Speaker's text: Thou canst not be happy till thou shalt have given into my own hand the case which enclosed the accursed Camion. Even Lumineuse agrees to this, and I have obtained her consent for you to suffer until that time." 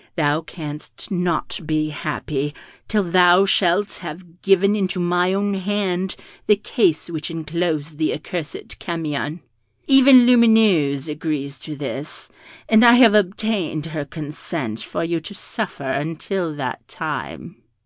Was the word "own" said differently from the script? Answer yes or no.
no